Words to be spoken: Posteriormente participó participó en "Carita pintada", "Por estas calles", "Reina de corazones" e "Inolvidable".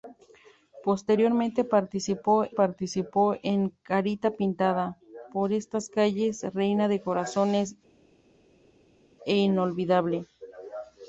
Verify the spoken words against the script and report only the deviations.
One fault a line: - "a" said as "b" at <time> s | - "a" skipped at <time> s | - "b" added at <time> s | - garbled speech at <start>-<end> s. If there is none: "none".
none